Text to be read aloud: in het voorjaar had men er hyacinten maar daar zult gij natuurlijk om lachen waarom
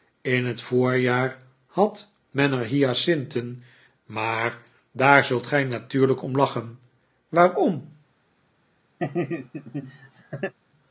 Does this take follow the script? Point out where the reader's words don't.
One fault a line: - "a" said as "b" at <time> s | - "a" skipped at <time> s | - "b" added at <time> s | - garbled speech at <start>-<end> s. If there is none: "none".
none